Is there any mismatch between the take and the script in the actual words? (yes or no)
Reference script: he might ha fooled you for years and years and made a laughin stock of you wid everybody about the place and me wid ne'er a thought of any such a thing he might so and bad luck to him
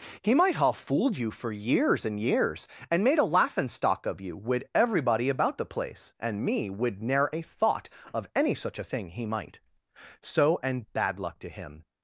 no